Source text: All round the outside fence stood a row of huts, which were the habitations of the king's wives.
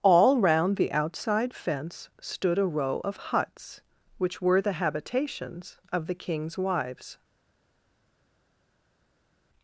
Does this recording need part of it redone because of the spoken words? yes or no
no